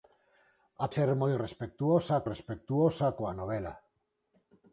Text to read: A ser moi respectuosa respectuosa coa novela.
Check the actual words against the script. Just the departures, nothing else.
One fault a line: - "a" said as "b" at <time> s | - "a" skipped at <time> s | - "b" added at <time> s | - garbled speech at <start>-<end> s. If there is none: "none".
none